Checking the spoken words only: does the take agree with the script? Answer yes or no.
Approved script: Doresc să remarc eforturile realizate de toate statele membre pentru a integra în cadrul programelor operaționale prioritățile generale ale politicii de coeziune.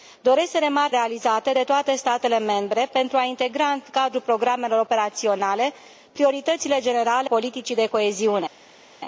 no